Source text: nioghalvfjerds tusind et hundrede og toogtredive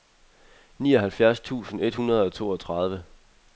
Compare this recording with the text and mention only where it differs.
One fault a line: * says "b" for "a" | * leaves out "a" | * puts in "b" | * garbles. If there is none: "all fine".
all fine